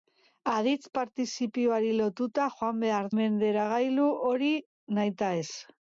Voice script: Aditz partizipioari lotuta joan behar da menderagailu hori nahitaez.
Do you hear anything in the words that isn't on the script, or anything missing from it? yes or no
yes